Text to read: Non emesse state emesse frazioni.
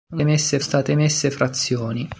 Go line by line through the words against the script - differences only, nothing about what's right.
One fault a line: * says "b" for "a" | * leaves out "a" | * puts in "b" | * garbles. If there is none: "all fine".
all fine